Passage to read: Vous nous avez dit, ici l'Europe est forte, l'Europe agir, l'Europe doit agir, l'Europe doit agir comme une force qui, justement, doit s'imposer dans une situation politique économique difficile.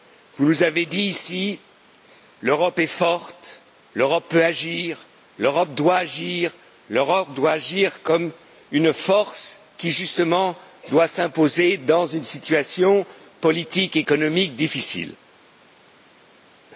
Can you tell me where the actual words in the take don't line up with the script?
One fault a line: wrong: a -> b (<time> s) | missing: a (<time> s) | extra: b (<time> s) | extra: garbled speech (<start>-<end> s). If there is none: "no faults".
extra: peut (4.3 s)